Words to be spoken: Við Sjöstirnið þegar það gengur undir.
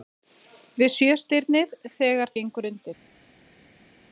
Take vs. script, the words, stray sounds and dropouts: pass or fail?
fail